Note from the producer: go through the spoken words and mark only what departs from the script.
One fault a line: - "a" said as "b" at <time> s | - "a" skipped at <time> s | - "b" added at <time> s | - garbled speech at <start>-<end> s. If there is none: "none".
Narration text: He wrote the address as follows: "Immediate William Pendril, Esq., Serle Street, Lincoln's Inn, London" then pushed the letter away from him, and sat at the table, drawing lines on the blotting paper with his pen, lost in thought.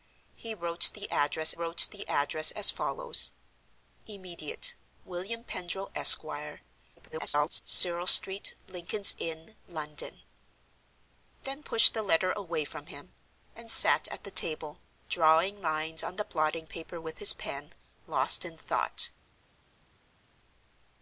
- "wrote the address" added at 1.5 s
- garbled speech at 7.0-7.6 s